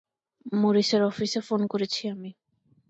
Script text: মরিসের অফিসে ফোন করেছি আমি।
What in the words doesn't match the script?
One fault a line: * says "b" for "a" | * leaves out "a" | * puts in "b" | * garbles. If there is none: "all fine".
all fine